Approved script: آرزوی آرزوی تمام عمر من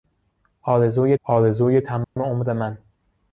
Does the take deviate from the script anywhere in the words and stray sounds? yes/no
yes